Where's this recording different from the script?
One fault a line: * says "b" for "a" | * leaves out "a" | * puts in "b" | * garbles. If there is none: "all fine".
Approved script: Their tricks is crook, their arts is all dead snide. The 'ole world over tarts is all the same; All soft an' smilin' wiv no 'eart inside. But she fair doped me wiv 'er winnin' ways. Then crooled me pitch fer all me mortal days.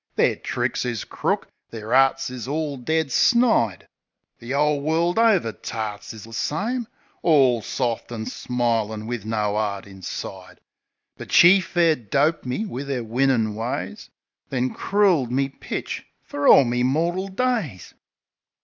* leaves out "all"